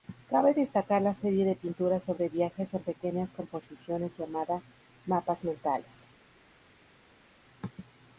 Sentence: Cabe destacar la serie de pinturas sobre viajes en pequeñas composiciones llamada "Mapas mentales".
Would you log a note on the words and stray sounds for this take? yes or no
no